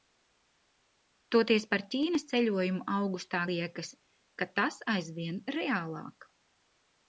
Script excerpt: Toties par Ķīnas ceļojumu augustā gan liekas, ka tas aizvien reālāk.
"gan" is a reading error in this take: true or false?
true